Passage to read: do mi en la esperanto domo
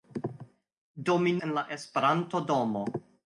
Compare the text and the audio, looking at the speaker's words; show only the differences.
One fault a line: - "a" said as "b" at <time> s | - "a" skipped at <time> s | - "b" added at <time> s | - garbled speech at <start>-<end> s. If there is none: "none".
none